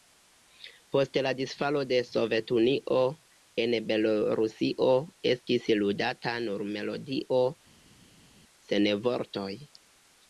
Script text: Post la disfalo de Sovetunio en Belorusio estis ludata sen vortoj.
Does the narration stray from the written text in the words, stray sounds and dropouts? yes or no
yes